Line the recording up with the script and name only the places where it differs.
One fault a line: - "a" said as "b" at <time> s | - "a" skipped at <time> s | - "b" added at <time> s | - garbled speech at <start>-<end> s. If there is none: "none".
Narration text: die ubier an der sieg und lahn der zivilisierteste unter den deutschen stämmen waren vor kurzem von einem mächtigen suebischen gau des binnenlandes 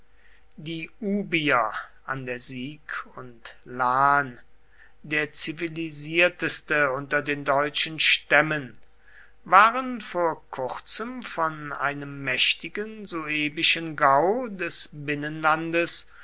none